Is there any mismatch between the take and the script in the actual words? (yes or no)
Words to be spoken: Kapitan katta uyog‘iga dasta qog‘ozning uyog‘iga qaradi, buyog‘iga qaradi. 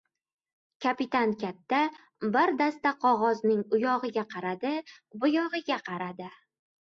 yes